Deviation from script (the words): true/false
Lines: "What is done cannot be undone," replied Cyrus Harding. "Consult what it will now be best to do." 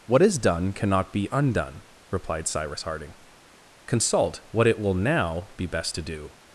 false